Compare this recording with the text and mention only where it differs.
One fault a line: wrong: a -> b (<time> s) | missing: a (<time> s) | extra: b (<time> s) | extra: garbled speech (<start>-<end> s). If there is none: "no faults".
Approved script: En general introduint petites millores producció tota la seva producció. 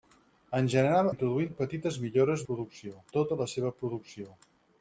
no faults